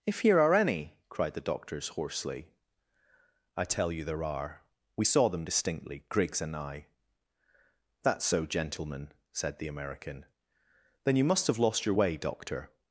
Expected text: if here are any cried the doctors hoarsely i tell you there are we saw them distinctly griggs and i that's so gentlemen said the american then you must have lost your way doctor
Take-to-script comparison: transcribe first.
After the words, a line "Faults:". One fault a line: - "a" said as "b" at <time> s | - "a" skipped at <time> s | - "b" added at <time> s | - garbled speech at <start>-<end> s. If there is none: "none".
if here are any cried the doctors hoarsely i tell you there are we saw them distinctly griggs and i that's so gentlemen said the american then you must have lost your way doctor
Faults:
none